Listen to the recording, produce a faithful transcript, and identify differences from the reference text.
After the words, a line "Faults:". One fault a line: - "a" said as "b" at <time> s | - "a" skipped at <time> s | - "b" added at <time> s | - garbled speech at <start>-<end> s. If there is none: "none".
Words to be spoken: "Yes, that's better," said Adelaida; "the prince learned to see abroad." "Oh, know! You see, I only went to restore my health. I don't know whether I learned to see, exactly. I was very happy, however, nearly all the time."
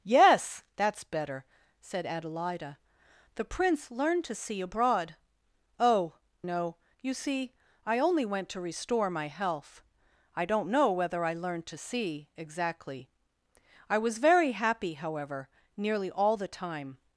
"Yes, that's better," said Adelaida; "the prince learned to see abroad." "Oh, know! You see, I only went to restore my health. I don't know whether I learned to see, exactly. I was very happy, however, nearly all the time."
Faults:
none